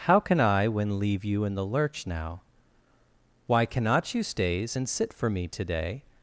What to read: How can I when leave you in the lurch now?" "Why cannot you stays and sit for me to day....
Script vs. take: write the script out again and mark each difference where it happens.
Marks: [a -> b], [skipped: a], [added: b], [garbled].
How can I when leave you in the lurch now?" "Why cannot you stays and sit for me to day....